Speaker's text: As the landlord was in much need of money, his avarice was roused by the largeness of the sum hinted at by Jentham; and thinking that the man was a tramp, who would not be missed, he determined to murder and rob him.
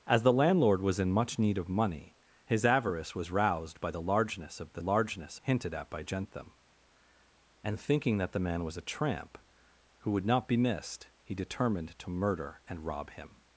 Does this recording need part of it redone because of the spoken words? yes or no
yes